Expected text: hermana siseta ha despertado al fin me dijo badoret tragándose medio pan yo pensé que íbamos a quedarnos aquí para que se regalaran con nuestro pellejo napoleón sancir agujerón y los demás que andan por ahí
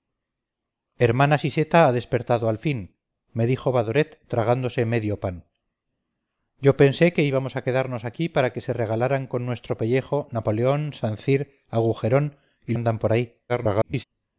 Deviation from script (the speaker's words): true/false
true